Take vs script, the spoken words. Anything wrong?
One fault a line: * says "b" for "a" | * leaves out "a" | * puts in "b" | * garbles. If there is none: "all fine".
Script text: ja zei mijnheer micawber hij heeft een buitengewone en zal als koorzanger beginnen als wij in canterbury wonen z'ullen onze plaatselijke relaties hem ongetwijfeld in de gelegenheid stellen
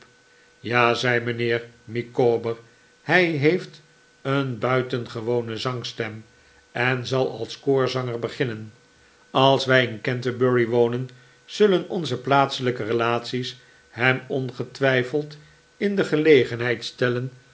* puts in "zangstem"